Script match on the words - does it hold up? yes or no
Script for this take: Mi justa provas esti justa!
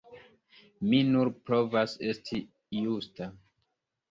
no